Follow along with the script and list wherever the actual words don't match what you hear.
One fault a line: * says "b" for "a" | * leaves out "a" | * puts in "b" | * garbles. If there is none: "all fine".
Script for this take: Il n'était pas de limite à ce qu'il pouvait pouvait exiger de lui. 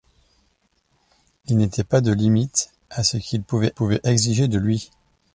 all fine